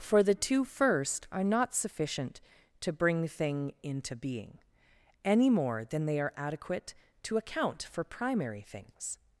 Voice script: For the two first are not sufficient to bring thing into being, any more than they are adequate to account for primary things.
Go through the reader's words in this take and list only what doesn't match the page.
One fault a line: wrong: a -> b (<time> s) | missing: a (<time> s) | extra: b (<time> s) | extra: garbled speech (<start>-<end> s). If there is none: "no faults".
no faults